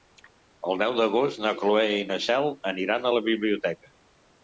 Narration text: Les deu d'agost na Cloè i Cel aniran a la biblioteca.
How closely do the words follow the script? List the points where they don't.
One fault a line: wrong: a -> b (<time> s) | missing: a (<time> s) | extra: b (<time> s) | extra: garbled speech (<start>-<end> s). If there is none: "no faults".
wrong: Les -> El (0.7 s)
extra: na (2.1 s)